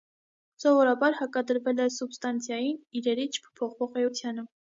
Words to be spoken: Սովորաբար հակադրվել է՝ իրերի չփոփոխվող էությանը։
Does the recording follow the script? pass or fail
fail